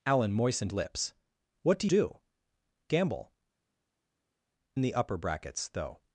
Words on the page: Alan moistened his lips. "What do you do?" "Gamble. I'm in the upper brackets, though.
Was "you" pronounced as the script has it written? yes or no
no